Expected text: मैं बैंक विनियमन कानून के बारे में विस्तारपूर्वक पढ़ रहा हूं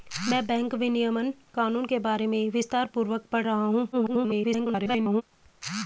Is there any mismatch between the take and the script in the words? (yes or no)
yes